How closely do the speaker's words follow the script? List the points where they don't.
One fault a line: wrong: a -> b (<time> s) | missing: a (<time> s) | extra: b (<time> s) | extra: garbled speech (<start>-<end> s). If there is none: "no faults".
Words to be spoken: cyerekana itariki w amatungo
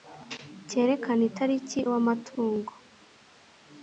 no faults